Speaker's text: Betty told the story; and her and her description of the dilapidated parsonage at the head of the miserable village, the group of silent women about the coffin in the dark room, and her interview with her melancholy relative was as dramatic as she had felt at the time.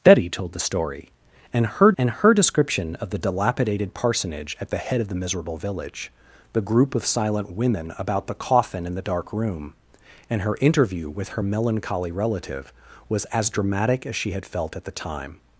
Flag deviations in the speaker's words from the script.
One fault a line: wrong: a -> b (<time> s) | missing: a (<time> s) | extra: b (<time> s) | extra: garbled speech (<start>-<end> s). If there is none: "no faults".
no faults